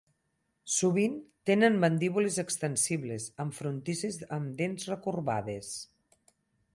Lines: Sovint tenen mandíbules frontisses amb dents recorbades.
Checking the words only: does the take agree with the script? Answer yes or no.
no